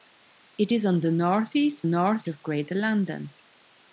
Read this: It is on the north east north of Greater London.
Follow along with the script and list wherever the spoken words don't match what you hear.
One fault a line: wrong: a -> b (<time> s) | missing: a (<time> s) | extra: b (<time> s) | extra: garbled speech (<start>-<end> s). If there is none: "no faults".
no faults